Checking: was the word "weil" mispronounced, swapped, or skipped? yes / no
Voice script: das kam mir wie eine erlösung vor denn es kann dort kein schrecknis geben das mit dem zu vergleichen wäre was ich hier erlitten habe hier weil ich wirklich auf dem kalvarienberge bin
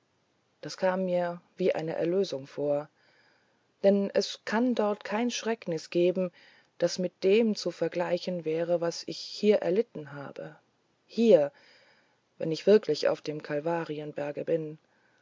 yes